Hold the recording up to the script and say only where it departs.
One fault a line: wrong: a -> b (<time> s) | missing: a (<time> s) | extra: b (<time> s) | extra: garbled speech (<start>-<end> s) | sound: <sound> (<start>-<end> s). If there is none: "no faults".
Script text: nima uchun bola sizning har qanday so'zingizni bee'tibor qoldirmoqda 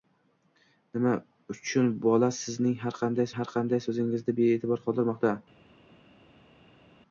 extra: har qanday (3.4 s)